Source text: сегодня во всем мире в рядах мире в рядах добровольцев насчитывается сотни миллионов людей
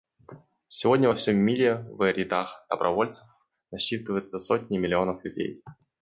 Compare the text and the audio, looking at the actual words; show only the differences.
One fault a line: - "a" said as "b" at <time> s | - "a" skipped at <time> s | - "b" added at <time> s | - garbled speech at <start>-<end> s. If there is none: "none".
- "мире в рядах" skipped at 2.6 s